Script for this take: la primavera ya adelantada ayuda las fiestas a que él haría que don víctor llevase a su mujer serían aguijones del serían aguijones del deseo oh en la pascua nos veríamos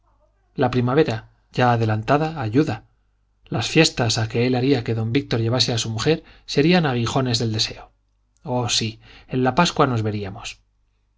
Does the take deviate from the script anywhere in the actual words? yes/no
yes